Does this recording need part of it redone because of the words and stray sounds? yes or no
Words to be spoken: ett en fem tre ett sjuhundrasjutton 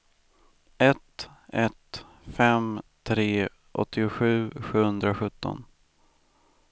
yes